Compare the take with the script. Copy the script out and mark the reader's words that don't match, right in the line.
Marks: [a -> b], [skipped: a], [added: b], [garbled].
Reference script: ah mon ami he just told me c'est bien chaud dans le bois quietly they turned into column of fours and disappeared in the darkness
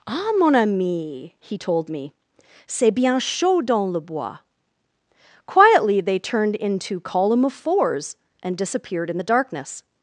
ah mon ami he [skipped: just] told me c'est bien chaud dans le bois quietly they turned into column of fours and disappeared in the darkness